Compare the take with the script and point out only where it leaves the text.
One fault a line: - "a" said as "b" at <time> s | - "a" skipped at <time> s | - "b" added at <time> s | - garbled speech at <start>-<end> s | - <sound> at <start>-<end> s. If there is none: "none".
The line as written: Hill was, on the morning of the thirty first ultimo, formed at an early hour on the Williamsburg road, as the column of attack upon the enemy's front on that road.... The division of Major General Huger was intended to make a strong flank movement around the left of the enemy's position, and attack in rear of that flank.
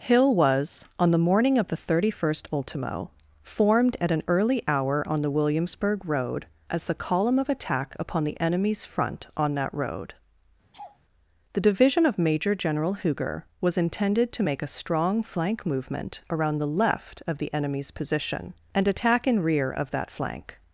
- laugh at 10.7-11.0 s